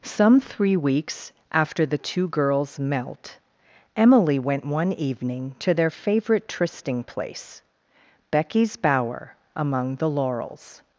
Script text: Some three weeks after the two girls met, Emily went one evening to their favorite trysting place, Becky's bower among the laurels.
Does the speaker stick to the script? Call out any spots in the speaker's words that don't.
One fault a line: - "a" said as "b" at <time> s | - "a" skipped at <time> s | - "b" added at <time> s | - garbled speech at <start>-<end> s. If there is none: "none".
- "met" said as "melt" at 2.8 s